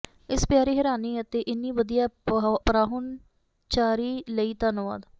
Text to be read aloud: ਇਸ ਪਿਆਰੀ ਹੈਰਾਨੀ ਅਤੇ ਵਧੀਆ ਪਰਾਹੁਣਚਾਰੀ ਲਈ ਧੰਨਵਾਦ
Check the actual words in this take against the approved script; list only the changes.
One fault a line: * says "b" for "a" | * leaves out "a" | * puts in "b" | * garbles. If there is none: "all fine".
* puts in "ਇੰਨੀ"